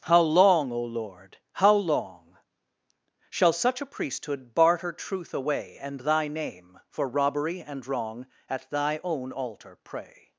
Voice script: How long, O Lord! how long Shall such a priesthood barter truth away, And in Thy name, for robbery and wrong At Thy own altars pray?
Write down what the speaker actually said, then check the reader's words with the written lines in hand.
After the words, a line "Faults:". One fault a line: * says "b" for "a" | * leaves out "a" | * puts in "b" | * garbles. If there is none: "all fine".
How long, O Lord! how long Shall such a priesthood barter truth away, And Thy name, for robbery and wrong At Thy own altar pray?
Faults:
* leaves out "in"
* says "altar" for "altars"